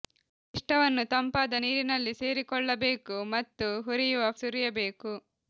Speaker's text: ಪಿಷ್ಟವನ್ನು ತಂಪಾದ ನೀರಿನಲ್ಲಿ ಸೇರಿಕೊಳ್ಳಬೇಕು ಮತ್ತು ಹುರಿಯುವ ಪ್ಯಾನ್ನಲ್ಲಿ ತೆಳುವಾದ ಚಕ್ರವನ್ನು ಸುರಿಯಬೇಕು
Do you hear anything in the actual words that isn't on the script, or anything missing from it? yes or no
yes